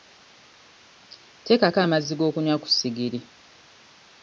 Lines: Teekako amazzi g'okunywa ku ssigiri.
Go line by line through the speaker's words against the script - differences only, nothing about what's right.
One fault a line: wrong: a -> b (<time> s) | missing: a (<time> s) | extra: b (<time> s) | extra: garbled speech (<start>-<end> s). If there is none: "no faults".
no faults